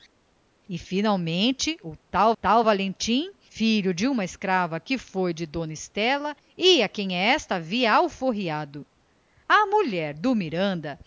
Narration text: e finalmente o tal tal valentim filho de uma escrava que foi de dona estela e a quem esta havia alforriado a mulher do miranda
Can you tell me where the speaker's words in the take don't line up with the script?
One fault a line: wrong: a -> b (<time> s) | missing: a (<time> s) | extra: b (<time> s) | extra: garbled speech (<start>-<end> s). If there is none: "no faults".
no faults